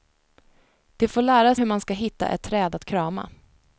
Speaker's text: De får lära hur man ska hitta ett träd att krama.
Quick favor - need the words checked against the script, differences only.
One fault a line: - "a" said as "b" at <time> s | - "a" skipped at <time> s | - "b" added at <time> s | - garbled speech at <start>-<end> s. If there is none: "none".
none